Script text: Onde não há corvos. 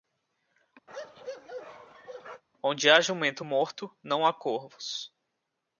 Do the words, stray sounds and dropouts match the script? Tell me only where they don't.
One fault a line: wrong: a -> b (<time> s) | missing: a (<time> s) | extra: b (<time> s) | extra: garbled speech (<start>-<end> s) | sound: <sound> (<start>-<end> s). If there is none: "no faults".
sound: bark (0.9-2.4 s)
extra: há jumento morto (2.9 s)